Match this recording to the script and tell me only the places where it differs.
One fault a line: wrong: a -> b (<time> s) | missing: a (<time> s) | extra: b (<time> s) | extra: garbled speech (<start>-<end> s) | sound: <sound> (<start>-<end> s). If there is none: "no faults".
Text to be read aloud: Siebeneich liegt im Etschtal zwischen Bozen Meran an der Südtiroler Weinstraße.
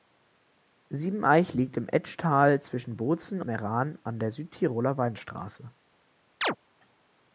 sound: chirp (6.4-6.6 s)